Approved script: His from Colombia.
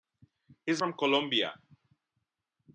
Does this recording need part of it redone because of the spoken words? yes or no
no